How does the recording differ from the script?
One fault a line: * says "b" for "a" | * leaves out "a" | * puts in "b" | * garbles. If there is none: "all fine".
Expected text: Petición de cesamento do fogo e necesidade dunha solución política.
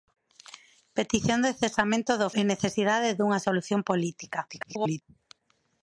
* leaves out "fogo"
* garbles